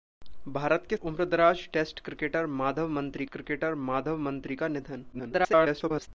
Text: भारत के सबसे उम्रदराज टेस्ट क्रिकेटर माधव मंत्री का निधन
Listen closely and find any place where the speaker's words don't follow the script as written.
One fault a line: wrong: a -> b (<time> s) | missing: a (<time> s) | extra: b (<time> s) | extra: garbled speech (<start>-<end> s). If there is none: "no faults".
missing: सबसे (1.0 s)
extra: क्रिकेटर माधव मंत्री (3.3 s)
extra: garbled speech (5.1-6.1 s)